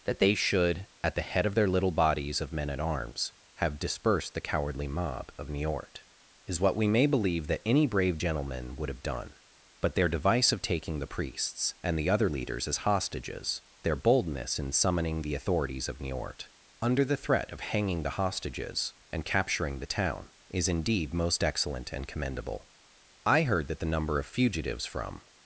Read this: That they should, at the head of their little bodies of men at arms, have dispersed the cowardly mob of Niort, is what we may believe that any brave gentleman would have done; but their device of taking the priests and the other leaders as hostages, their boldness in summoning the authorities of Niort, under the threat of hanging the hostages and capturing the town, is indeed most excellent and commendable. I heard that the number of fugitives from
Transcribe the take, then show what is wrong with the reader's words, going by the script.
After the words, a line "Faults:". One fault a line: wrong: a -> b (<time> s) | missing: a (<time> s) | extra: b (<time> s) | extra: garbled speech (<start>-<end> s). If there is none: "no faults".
That they should, at the head of their little bodies of men at arms, have dispersed the cowardly mob of Niort, is what we may believe that any brave gentleman would have done; but their device of taking the priests and the other leaders as hostages, their boldness in summoning the authorities of Niort, under the threat of hanging the hostages and capturing the town, is indeed most excellent and commendable. I heard that the number of fugitives from
Faults:
no faults